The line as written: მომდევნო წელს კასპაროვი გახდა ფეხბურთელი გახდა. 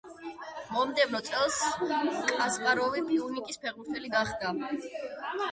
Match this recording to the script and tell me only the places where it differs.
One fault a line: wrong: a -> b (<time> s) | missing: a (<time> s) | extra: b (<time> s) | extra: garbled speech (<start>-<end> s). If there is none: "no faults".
wrong: გახდა -> პიუნიკის (3.1 s)